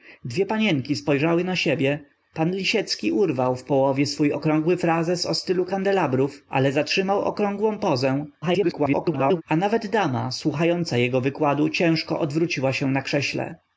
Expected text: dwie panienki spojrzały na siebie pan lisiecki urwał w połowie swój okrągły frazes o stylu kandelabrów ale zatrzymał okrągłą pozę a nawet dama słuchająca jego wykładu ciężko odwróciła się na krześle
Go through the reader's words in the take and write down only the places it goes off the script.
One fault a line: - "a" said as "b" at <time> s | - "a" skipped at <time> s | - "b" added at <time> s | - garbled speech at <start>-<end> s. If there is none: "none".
- garbled speech at 8.4-9.4 s